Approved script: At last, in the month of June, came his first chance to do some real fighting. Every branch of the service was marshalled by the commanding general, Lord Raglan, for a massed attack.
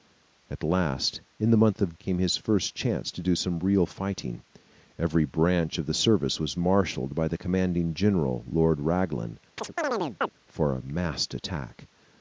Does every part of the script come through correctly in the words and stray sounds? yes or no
no